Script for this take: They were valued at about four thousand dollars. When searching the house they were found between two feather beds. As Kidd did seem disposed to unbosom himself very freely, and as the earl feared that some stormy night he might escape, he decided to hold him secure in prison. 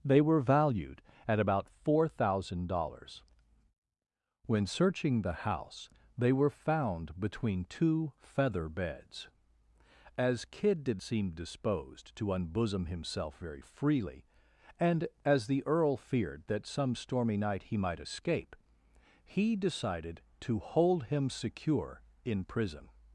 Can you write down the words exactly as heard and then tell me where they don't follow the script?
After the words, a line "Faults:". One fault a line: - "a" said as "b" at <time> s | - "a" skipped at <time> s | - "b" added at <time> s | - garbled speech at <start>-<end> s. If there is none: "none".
They were valued at about four thousand dollars. When searching the house they were found between two feather beds. As Kidd did seem disposed to unbosom himself very freely, and as the earl feared that some stormy night he might escape, he decided to hold him secure in prison.
Faults:
none